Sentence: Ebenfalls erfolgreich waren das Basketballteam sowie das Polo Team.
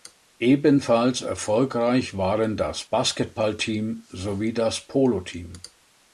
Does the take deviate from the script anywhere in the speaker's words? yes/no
no